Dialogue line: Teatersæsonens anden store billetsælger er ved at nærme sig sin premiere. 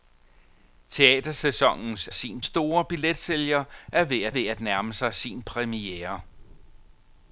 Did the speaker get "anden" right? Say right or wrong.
wrong